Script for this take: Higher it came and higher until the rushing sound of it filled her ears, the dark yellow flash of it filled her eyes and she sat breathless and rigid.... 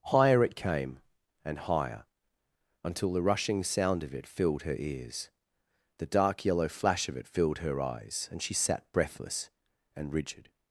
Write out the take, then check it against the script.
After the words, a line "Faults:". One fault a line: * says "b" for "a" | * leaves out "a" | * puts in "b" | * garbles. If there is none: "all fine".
Higher it came and higher until the rushing sound of it filled her ears, the dark yellow flash of it filled her eyes and she sat breathless and rigid....
Faults:
all fine